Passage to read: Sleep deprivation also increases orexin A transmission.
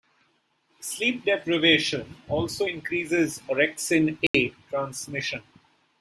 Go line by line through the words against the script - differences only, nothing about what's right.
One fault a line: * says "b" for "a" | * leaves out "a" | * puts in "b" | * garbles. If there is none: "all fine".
all fine